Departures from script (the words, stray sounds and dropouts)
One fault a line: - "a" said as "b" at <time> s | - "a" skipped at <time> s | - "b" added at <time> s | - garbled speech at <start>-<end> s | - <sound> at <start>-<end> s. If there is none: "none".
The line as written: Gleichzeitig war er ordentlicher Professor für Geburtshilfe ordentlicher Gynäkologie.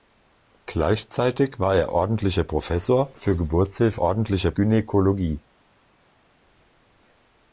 none